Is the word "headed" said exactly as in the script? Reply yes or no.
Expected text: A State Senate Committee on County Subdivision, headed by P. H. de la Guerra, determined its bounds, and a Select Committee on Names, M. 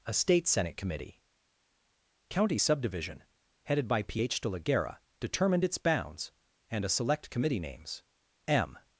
yes